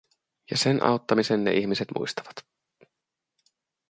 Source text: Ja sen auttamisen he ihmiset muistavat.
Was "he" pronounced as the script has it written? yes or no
no